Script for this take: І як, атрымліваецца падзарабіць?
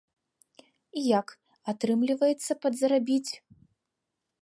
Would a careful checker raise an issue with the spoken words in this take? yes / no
no